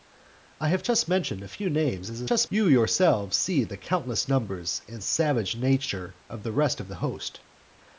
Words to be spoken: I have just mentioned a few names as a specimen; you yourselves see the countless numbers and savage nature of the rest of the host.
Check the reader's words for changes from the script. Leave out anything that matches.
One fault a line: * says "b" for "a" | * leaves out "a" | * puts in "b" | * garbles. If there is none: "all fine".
* says "just" for "specimen"